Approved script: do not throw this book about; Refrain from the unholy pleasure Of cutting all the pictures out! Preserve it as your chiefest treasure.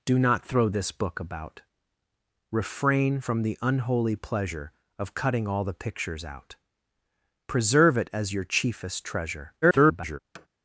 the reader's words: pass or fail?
fail